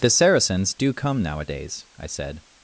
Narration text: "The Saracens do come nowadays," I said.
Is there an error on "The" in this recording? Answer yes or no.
no